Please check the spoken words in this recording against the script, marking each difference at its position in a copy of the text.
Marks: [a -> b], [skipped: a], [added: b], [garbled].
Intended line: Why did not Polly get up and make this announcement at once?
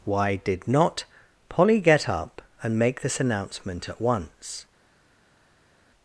Why did not Polly get up and make this announcement at once?